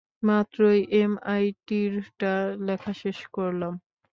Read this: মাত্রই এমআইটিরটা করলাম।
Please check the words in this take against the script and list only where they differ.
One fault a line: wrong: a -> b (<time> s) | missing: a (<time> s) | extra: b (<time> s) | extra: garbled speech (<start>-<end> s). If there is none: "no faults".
extra: লেখা শেষ (2.7 s)